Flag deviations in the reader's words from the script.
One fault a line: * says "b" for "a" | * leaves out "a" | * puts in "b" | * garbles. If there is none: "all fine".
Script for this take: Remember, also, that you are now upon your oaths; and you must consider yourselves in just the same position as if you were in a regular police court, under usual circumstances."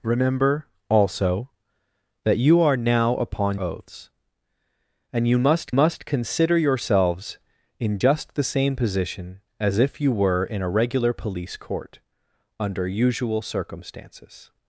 * leaves out "your"
* puts in "must"